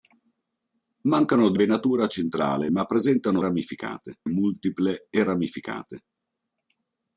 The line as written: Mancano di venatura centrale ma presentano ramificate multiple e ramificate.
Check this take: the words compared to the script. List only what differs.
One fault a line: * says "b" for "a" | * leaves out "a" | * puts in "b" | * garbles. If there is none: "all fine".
all fine